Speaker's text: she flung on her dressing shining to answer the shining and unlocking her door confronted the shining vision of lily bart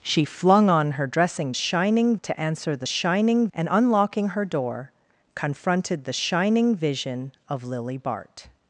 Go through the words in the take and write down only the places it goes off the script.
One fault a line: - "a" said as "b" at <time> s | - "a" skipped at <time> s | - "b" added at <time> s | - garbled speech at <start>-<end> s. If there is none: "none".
none